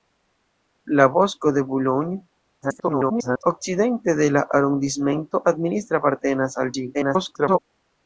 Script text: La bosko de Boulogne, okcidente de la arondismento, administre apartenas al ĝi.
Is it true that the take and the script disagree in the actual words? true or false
true